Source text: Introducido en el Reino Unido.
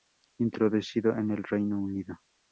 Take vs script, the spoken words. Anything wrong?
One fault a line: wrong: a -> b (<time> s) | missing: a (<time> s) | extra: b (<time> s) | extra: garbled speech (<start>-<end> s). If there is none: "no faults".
no faults